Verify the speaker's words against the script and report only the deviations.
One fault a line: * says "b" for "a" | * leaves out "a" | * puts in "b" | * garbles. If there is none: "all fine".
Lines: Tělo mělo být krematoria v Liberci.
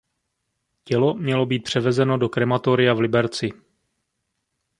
* puts in "převezeno do"